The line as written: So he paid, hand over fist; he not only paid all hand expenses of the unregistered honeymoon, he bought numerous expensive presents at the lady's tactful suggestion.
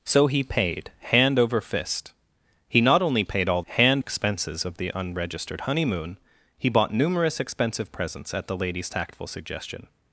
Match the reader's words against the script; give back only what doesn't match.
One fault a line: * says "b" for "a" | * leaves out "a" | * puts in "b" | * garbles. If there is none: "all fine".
all fine